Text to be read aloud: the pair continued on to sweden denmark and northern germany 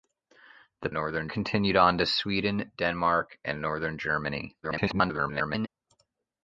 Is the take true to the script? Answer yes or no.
no